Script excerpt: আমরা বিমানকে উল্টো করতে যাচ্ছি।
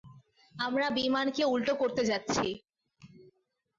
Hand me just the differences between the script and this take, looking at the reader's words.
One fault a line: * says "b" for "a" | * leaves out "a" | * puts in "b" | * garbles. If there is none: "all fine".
all fine